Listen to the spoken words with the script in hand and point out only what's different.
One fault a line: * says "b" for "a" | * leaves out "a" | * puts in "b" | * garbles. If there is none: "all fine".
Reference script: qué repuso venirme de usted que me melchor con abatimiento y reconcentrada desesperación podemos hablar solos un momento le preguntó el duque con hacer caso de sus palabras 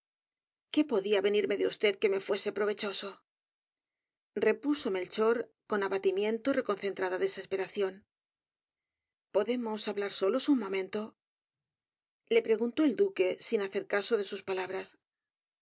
* says "podía" for "repuso"
* puts in "fuese provechoso repuso"
* says "sin" for "con"